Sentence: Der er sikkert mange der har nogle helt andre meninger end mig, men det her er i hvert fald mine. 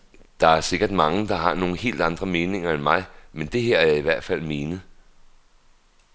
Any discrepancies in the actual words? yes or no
no